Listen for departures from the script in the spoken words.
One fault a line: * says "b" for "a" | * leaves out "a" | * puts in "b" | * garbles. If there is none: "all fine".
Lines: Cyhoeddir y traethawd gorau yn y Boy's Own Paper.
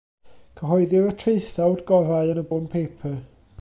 * leaves out "Boy's"